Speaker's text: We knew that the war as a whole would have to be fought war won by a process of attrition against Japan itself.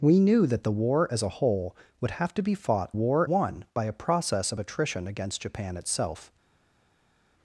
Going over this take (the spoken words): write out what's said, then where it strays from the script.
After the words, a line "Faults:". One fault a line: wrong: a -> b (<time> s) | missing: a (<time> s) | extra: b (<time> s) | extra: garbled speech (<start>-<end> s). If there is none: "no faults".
We knew that the war as a whole would have to be fought war won by a process of attrition against Japan itself.
Faults:
no faults